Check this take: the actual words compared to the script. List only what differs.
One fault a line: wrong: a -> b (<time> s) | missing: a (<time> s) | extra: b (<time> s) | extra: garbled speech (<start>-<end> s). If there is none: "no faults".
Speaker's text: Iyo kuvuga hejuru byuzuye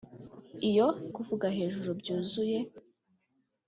no faults